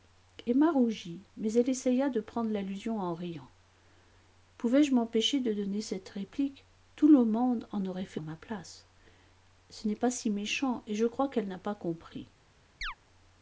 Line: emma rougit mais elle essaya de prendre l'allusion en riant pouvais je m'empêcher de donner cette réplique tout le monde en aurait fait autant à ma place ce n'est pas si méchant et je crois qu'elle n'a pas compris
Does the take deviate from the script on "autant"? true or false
true